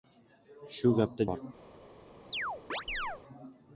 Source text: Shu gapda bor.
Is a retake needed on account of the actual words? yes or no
no